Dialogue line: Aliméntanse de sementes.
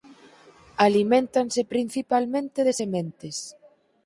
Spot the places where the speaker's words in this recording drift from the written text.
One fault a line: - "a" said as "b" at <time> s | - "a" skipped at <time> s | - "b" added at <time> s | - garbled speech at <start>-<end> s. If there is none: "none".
- "principalmente" added at 1.7 s